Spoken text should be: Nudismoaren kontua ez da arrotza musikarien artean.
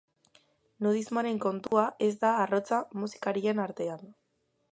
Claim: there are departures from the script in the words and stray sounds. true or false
true